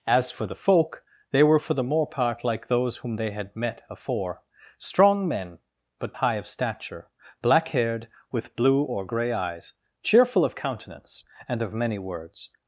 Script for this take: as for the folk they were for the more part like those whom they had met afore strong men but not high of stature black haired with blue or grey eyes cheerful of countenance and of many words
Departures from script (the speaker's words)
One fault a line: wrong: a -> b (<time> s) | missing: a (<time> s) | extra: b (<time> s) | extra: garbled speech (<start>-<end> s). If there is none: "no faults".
missing: not (6.2 s)